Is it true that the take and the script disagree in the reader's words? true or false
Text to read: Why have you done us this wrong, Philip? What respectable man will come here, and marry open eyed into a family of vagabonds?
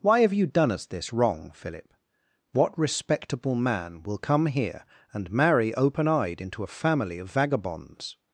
false